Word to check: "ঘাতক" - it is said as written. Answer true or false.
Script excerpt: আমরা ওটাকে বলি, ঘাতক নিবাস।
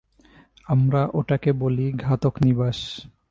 true